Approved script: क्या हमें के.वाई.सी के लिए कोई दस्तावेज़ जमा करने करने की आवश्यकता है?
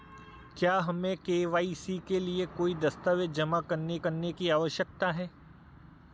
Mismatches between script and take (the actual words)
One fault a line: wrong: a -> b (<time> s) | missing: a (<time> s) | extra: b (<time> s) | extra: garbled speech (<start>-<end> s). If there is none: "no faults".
no faults